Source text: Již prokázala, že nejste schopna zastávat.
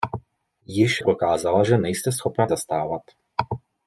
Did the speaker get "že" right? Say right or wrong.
right